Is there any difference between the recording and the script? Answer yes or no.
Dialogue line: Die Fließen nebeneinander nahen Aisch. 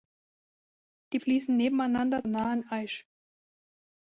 no